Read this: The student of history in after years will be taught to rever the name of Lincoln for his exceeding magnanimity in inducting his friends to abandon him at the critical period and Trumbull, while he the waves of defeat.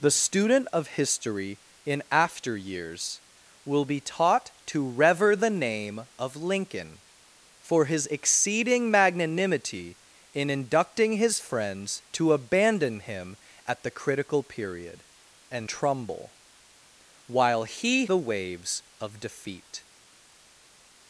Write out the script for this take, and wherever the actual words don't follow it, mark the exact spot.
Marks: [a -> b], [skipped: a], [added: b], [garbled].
The student of history in after years will be taught to rever the name of Lincoln for his exceeding magnanimity in inducting his friends to abandon him at the critical period and Trumbull, while he the waves of defeat.